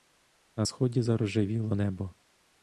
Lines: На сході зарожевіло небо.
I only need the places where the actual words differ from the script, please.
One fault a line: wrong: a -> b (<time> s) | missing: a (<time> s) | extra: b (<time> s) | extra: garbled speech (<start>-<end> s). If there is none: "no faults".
no faults